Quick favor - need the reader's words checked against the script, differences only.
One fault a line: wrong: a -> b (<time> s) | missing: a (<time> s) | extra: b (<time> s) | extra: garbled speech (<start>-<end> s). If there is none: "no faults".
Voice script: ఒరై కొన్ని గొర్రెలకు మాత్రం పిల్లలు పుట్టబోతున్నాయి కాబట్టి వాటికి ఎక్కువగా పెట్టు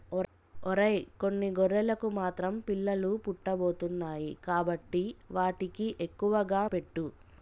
no faults